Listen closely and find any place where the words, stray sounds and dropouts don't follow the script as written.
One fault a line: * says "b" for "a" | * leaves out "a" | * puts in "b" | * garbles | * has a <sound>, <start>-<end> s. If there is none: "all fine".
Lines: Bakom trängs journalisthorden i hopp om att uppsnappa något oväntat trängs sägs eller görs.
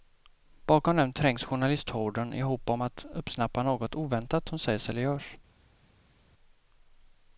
* puts in "dem"
* says "som" for "trängs"